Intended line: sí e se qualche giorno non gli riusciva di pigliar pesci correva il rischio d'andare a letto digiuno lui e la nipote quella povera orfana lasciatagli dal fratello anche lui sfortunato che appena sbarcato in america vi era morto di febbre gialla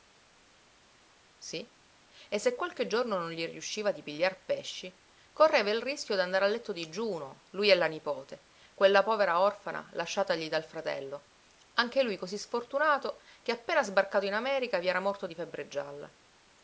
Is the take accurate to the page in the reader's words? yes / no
no